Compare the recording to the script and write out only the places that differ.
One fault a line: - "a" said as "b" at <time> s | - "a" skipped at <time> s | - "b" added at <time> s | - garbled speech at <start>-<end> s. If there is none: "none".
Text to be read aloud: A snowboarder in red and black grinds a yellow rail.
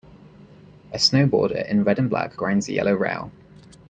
none